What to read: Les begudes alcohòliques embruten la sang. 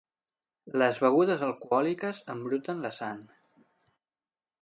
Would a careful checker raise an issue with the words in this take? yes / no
no